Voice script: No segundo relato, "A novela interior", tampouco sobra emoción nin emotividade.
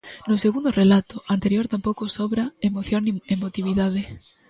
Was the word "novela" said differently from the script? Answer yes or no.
yes